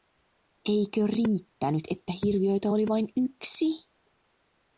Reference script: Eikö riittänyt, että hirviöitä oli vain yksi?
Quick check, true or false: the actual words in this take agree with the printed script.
true